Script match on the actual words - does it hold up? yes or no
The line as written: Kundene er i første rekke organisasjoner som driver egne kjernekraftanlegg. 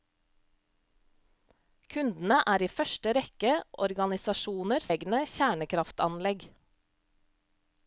no